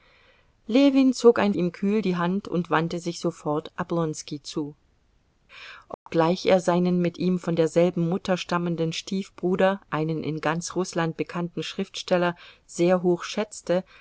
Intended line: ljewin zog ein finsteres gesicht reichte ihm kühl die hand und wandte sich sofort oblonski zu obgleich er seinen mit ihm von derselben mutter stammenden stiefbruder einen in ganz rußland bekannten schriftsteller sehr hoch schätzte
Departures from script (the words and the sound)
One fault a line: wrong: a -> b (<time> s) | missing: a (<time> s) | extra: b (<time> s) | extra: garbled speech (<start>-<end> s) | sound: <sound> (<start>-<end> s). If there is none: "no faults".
missing: finsteres gesicht reichte (1.5 s)
sound: dropout (5.9-6.1 s)